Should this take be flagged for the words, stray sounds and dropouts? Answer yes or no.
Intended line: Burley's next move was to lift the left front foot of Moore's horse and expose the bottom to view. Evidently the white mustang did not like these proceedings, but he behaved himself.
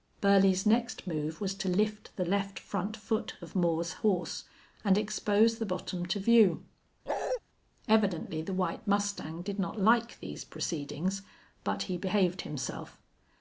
yes